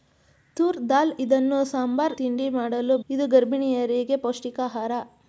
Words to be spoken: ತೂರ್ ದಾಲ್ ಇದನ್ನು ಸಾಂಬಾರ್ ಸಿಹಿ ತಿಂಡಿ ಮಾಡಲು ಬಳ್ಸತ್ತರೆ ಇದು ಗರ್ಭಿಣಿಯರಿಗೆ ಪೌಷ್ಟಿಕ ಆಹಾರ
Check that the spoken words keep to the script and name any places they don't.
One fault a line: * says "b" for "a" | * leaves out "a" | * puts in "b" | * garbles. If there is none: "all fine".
* leaves out "ಸಿಹಿ"
* leaves out "ಬಳ್ಸತ್ತರೆ"